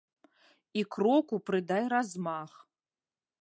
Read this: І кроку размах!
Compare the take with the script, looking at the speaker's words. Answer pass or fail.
fail